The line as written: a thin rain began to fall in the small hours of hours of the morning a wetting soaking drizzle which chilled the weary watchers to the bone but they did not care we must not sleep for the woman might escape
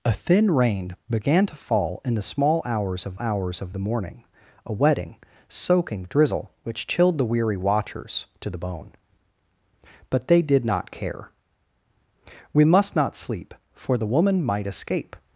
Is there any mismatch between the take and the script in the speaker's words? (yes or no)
no